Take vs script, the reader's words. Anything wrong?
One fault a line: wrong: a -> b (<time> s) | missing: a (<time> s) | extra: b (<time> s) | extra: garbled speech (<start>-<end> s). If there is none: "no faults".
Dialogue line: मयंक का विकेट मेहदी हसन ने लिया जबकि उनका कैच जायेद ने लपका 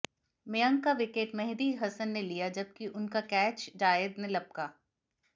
no faults